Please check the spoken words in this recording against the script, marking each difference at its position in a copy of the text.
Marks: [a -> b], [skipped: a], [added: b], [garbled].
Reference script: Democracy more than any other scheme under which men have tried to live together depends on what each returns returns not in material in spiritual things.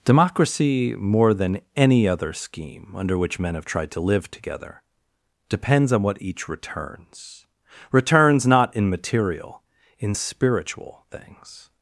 Democracy more than any other scheme under which men have tried to live together depends on what each returns returns not in material in spiritual things.